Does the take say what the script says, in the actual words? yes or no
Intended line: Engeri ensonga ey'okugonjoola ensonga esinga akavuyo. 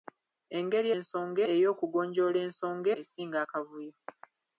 yes